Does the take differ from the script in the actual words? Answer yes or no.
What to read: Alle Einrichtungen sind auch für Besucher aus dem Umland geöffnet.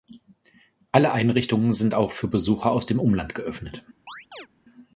no